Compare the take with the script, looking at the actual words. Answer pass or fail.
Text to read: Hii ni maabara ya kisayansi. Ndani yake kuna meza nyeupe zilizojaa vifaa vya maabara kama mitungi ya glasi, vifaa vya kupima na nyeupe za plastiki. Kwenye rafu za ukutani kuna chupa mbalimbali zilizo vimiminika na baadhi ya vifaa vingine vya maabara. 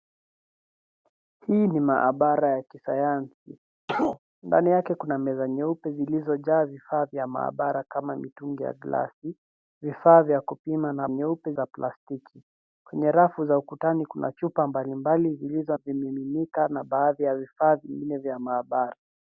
pass